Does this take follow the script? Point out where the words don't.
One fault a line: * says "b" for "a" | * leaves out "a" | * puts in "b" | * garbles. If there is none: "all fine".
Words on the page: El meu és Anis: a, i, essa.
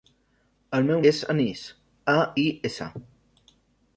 all fine